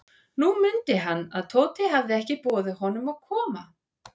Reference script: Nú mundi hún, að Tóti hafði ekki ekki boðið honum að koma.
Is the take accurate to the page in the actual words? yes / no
no